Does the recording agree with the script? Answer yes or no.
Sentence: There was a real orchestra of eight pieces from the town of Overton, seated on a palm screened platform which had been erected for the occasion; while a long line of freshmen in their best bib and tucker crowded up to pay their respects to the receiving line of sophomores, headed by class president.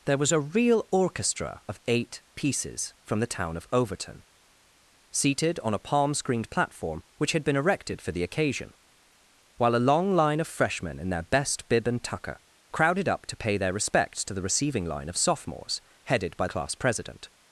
yes